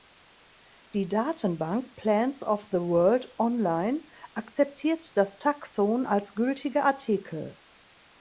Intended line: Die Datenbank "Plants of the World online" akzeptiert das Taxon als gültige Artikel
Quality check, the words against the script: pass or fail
pass